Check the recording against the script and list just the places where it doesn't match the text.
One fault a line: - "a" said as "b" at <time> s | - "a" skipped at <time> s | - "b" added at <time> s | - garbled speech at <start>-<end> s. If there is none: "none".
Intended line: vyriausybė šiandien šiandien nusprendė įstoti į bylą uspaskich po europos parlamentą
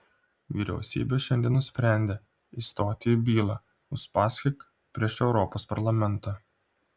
- "šiandien" skipped at 1.6 s
- "po" said as "prieš" at 5.0 s